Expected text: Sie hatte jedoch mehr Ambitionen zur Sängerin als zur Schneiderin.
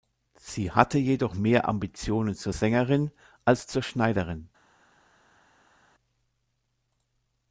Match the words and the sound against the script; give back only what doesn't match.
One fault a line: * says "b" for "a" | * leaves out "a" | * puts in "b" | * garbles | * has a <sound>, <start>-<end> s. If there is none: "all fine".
all fine